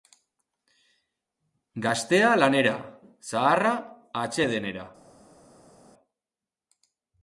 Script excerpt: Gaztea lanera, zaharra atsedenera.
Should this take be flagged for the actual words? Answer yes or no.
no